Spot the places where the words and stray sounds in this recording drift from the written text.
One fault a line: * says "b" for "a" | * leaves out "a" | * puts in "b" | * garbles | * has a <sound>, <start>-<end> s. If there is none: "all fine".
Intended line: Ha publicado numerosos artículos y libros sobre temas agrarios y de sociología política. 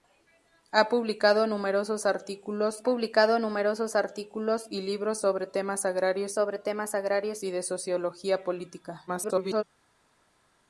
* puts in "publicado numerosos artículos"
* puts in "sobre temas agrarios"
* garbles